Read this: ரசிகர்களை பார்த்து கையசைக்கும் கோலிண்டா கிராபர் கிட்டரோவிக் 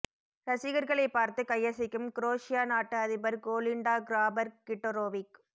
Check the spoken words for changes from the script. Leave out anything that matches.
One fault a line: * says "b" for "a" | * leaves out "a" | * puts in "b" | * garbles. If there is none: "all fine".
* puts in "குரோஷியா நாட்டு அதிபர்"